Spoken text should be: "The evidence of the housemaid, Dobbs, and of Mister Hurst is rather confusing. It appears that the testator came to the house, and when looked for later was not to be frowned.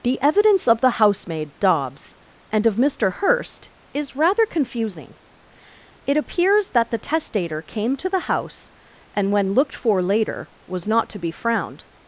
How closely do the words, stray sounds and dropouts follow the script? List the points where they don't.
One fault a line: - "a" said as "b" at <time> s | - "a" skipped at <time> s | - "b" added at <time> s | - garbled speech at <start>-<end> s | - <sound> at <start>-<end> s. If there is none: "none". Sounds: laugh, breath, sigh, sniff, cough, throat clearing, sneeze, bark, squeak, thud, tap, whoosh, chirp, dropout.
none